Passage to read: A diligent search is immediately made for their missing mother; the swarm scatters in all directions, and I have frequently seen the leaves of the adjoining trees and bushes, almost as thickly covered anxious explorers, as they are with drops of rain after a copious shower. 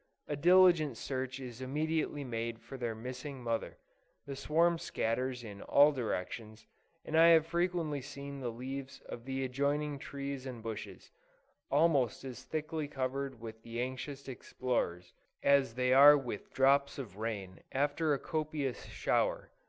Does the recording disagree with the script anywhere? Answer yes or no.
yes